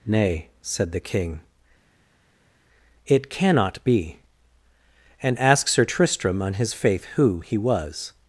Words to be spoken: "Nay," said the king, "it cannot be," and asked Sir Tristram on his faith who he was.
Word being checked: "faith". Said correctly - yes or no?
yes